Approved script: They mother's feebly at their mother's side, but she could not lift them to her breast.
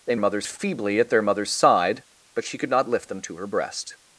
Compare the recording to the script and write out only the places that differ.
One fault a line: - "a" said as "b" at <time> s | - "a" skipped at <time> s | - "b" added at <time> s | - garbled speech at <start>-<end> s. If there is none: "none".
none